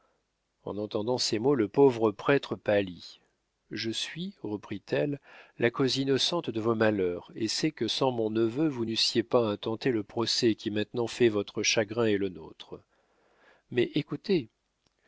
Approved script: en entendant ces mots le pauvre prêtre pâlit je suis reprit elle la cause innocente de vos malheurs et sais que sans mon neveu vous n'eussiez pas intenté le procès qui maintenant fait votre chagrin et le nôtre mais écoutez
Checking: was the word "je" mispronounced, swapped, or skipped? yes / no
no